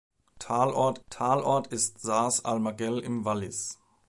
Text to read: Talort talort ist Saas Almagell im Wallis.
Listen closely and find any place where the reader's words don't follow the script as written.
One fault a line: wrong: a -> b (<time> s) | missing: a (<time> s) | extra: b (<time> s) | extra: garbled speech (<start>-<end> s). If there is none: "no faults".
no faults